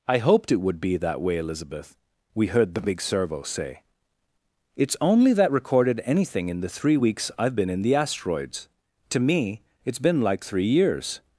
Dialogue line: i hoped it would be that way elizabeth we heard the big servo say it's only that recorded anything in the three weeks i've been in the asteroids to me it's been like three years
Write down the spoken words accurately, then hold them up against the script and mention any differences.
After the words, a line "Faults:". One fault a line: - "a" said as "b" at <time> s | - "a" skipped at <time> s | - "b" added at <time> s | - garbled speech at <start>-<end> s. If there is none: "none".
i hoped it would be that way elizabeth we heard the big servo say it's only that recorded anything in the three weeks i've been in the asteroids to me it's been like three years
Faults:
none